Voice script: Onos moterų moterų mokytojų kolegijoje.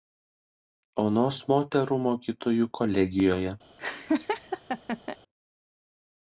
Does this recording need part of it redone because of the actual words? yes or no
yes